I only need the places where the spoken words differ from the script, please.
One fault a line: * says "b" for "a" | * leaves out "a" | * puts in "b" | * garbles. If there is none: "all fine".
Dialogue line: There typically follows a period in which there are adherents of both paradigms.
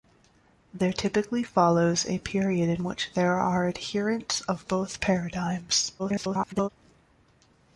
* garbles